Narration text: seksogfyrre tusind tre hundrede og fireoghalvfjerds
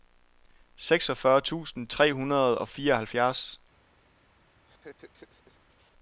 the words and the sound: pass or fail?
fail